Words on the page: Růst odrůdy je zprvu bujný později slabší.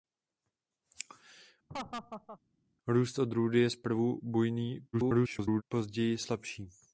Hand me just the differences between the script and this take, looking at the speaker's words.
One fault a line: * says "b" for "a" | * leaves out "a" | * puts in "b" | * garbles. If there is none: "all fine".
* garbles